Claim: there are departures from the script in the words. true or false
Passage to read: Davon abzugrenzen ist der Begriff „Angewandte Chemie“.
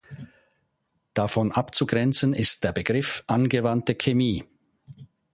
false